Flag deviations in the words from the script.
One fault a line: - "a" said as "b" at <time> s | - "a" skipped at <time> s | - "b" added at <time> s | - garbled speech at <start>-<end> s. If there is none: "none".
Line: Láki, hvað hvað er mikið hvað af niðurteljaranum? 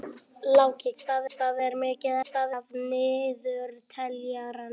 none